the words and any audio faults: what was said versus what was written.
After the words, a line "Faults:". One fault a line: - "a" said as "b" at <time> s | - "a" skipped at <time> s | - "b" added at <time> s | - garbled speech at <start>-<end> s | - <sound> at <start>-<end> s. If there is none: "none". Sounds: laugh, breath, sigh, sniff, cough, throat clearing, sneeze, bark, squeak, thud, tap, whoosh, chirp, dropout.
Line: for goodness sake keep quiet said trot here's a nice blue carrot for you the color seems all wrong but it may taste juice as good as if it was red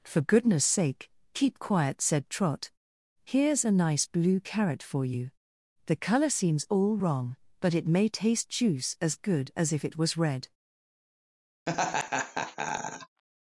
for goodness sake keep quiet said trot here's a nice blue carrot for you the color seems all wrong but it may taste juice as good as if it was red
Faults:
- laugh at 11.7-13.2 s